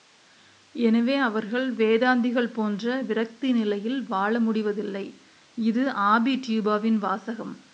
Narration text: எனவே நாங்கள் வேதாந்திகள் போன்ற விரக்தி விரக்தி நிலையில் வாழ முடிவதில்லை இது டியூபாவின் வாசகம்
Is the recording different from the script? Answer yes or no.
yes